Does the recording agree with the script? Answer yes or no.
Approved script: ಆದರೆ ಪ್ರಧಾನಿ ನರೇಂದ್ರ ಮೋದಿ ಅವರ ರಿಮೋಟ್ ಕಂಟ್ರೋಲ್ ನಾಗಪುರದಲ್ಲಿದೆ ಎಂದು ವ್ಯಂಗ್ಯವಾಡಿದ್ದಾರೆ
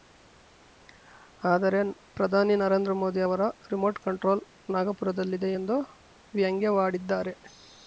yes